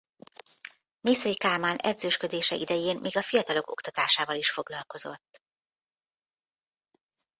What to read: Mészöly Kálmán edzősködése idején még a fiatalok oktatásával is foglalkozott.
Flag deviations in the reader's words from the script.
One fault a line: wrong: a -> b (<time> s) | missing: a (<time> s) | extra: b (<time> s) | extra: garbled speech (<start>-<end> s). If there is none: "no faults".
no faults